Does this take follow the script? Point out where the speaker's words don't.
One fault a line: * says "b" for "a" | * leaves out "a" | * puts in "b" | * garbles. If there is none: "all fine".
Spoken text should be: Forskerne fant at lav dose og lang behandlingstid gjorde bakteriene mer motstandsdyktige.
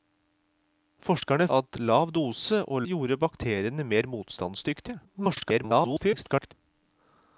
* leaves out "fant"
* leaves out "lang behandlingstid"
* garbles